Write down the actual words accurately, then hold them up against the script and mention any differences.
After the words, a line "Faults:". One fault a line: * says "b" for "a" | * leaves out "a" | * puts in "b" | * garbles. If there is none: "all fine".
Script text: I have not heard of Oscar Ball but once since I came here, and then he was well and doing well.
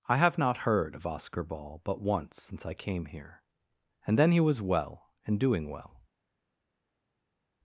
I have not heard of Oscar Ball but once since I came here, and then he was well and doing well.
Faults:
all fine